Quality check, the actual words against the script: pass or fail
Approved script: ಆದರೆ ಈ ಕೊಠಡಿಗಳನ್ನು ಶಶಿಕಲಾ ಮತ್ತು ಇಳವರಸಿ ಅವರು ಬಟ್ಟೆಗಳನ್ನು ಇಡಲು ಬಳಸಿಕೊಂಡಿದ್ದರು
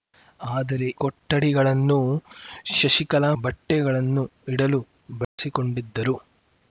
fail